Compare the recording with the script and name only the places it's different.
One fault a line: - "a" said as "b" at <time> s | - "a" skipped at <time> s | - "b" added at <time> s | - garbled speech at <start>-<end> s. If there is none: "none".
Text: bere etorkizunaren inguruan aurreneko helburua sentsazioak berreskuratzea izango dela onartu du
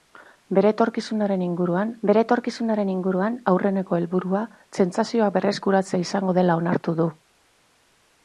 - "bere etorkizunaren inguruan" added at 2.1 s